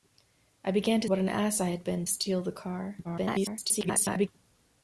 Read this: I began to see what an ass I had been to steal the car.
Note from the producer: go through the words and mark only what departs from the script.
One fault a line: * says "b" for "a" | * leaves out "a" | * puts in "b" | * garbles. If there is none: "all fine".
* leaves out "see"
* leaves out "to"
* garbles